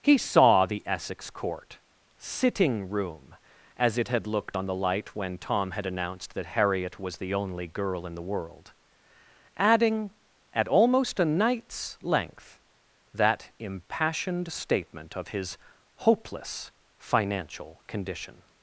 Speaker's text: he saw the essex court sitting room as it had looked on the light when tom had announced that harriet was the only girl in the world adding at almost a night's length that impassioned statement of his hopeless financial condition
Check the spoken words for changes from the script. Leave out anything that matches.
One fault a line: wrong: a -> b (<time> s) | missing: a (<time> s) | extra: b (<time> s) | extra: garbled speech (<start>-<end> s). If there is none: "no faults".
no faults